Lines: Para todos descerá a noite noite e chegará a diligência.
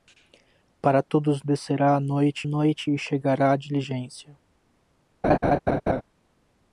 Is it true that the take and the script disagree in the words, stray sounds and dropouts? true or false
true